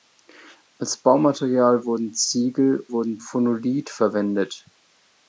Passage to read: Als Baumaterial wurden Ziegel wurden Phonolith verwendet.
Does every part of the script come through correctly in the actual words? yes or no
yes